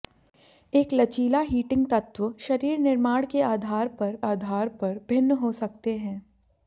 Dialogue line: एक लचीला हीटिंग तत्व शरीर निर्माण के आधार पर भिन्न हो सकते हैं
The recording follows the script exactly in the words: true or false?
false